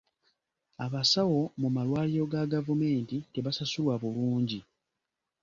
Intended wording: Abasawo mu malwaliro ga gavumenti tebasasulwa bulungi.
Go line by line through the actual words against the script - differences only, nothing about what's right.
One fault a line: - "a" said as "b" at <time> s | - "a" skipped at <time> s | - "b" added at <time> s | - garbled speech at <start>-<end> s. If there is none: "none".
none